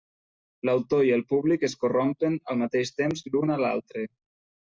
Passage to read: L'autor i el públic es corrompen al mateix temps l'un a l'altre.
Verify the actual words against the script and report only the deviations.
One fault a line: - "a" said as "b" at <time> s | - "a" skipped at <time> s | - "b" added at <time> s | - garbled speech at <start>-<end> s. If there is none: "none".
none